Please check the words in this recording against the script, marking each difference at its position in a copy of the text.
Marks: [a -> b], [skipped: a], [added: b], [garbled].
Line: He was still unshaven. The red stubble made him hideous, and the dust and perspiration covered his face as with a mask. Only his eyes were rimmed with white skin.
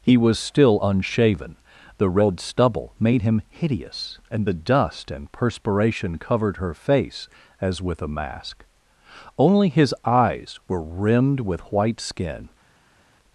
He was still unshaven. The red stubble made him hideous, and the dust and perspiration covered [his -> her] face as with a mask. Only his eyes were rimmed with white skin.